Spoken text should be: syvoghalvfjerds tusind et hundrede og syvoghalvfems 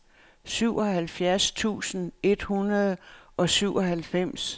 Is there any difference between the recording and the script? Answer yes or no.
no